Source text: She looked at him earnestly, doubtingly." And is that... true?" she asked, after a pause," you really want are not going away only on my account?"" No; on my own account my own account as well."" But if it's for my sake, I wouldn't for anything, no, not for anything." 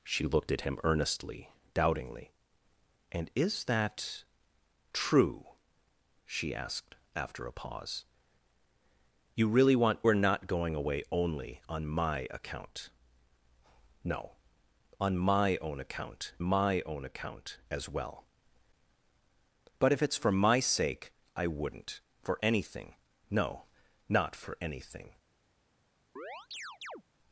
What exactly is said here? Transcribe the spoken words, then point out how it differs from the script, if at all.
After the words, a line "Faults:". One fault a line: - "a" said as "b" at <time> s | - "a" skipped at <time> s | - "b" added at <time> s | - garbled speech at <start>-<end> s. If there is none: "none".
She looked at him earnestly, doubtingly." And is that... true?" she asked, after a pause," you really want are not going away only on my account?"" No; on my own account my own account as well."" But if it's for my sake, I wouldn't for anything, no, not for anything."
Faults:
none